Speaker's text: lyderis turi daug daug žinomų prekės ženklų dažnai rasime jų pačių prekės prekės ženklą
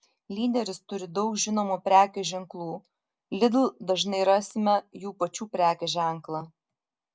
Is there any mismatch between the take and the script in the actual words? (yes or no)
yes